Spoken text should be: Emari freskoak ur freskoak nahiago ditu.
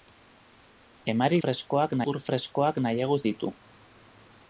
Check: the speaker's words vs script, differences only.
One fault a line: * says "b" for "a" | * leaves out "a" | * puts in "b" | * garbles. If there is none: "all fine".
all fine